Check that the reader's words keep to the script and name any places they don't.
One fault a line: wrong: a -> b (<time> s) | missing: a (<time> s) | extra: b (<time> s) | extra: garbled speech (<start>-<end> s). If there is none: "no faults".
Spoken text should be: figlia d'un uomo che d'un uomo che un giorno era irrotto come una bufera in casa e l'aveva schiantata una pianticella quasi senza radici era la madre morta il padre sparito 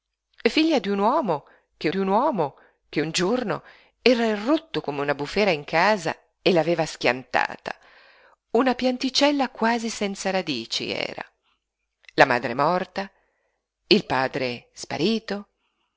no faults